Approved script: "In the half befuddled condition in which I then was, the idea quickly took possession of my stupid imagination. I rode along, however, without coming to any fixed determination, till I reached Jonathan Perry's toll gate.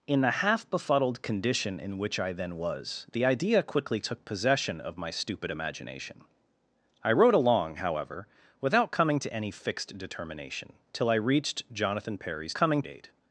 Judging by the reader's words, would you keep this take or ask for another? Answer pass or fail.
fail